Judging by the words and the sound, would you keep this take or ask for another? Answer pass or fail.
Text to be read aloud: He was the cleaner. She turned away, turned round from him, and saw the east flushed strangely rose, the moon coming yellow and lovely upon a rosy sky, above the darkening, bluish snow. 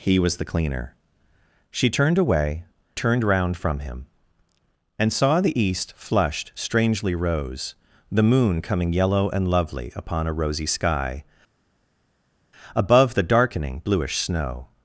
pass